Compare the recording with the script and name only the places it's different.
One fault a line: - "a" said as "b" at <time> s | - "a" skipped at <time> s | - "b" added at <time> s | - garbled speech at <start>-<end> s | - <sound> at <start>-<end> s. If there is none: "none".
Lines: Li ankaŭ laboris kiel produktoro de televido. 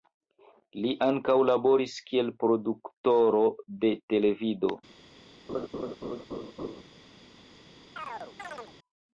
- laugh at 5.5-6.8 s
- chirp at 8.0-8.7 s